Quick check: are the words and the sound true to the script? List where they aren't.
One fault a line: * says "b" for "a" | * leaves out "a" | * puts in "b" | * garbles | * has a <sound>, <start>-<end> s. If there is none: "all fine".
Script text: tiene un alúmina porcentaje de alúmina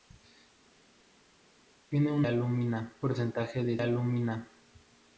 all fine